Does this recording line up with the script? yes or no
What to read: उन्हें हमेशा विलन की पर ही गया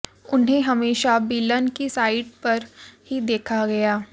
no